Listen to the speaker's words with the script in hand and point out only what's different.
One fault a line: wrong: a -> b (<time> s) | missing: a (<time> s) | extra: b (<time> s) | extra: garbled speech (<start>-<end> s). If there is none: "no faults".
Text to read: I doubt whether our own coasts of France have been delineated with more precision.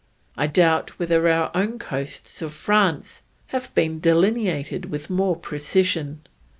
no faults